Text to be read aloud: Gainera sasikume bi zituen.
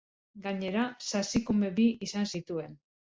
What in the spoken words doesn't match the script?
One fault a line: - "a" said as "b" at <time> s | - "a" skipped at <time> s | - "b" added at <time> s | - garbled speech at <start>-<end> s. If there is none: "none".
- "izan" added at 2.1 s